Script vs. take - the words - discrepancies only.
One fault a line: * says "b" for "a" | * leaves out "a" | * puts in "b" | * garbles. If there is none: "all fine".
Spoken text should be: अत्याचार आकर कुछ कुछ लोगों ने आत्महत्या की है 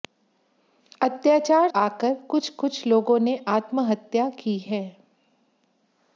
all fine